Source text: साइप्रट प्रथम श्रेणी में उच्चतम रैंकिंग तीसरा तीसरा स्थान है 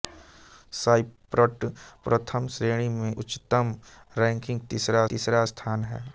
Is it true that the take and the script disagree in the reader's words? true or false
false